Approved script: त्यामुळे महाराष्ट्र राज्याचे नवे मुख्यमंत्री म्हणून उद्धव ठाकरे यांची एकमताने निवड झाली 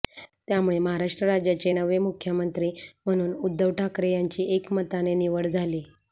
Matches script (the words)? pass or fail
pass